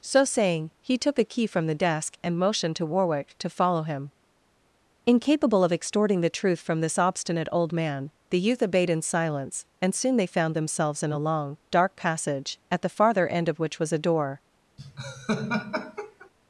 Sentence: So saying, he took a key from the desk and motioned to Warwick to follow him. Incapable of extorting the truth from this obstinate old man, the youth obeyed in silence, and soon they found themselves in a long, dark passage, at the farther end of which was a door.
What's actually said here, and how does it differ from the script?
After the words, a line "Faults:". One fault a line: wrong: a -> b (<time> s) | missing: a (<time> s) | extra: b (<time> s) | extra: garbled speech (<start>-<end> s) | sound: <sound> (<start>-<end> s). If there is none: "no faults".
So saying, he took a key from the desk and motioned to Warwick to follow him. Incapable of extorting the truth from this obstinate old man, the youth obeyed in silence, and soon they found themselves in a long, dark passage, at the farther end of which was a door.
Faults:
sound: laugh (14.8-16.3 s)